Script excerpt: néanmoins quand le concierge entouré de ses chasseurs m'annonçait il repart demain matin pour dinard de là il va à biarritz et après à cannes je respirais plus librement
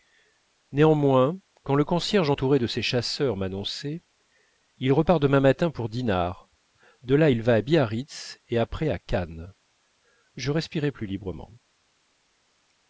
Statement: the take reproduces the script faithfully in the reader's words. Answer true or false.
true